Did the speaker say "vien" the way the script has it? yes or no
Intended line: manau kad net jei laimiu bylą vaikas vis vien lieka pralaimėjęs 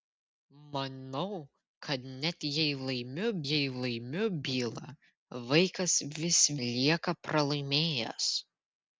no